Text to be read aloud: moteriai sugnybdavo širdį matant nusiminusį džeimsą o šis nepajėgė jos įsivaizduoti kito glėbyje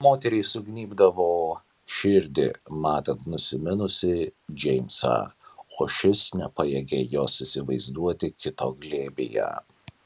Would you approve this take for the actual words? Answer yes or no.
yes